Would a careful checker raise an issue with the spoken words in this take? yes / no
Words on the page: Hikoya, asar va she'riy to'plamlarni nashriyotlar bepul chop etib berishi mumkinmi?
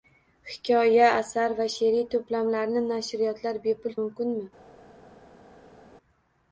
yes